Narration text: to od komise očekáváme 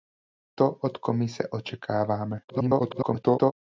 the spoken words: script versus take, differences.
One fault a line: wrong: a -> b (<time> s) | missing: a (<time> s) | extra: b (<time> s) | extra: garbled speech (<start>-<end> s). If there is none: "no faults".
extra: garbled speech (2.5-3.5 s)